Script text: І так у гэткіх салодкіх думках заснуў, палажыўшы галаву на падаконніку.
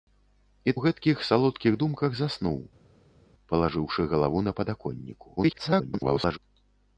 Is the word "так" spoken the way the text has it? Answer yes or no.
no